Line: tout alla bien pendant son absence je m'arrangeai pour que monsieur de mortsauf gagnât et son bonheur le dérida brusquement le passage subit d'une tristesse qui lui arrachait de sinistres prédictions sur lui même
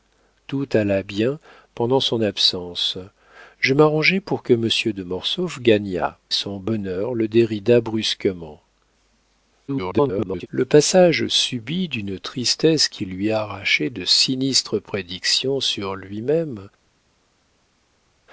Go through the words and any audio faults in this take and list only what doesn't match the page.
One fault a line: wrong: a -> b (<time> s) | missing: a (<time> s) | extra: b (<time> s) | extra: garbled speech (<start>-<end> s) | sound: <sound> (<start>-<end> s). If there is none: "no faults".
missing: et (6.2 s)
extra: garbled speech (9.7-10.5 s)